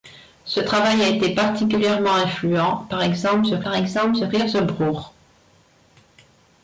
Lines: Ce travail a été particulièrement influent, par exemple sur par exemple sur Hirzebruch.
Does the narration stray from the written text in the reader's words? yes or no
no